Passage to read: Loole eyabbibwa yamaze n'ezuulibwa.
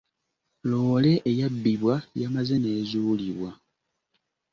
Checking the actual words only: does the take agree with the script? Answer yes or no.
yes